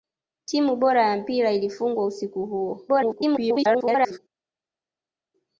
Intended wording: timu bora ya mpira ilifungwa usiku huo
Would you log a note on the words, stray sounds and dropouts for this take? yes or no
yes